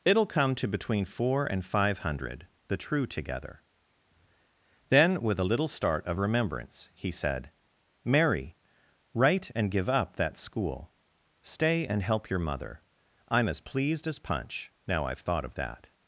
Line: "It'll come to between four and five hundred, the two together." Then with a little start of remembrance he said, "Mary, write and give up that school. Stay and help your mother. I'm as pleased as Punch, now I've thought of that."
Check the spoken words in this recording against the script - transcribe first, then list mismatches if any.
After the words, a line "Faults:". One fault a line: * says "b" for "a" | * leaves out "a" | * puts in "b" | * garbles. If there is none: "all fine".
"It'll come to between four and five hundred, the true together." Then with a little start of remembrance he said, "Mary, write and give up that school. Stay and help your mother. I'm as pleased as Punch, now I've thought of that."
Faults:
* says "true" for "two"